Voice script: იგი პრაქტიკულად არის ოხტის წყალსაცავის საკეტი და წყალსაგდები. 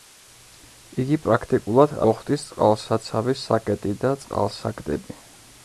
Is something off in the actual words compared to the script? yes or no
yes